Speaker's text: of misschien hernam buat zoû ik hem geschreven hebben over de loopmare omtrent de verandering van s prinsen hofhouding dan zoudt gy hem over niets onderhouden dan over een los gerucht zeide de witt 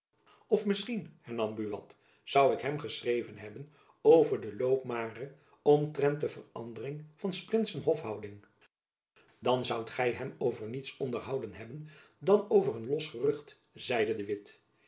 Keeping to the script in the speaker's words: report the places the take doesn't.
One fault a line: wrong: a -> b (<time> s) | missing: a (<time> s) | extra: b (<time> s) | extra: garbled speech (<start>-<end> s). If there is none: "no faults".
extra: hebben (11.5 s)